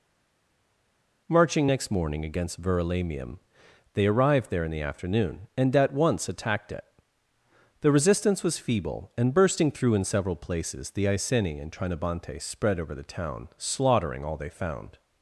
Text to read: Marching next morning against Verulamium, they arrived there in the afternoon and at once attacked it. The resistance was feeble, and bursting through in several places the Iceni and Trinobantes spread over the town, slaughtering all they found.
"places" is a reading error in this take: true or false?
false